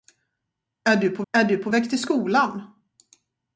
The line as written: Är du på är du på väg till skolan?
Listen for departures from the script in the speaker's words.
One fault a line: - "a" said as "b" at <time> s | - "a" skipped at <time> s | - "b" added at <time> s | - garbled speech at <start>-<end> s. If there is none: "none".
none